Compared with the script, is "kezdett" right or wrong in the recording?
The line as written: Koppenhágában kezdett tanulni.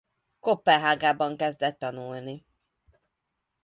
right